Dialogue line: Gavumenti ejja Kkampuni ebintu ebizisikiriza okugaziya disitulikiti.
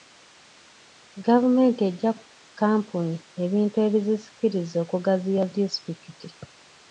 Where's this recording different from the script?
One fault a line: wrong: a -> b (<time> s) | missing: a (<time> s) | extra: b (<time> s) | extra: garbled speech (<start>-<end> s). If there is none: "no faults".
no faults